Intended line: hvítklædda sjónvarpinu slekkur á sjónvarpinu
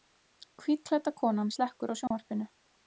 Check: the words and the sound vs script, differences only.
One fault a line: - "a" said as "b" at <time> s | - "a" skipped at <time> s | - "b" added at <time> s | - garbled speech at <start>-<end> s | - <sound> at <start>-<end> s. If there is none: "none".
- "sjónvarpinu" said as "konan" at 1.2 s
- dropout at 2.1-2.1 s